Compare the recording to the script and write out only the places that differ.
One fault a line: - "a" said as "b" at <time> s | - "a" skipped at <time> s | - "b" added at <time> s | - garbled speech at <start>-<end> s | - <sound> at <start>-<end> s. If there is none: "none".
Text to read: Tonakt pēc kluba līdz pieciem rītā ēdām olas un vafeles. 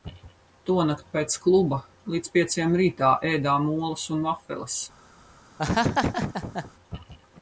- laugh at 5.6-6.7 s